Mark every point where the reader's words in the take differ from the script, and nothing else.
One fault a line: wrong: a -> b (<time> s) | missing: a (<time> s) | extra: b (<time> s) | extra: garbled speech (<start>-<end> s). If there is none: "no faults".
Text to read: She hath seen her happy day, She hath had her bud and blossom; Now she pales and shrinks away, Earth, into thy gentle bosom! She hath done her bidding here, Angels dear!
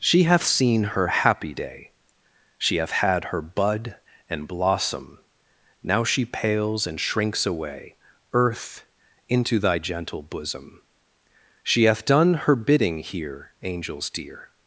no faults